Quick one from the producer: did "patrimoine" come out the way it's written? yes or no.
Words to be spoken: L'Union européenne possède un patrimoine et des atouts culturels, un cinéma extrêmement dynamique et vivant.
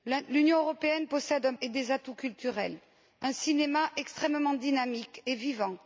no